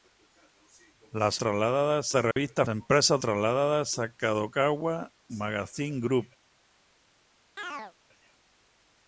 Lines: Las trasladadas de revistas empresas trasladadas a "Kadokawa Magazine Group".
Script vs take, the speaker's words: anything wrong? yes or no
no